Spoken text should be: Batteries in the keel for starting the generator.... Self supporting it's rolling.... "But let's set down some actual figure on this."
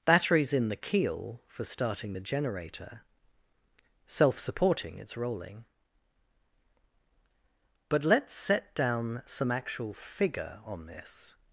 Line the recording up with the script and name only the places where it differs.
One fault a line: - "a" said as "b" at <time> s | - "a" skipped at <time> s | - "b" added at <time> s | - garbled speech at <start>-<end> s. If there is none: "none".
none